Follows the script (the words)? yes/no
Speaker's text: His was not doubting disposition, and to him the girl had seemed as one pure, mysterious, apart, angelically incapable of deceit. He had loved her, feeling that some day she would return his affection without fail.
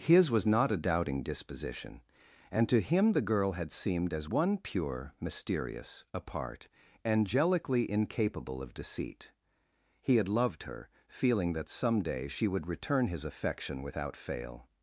no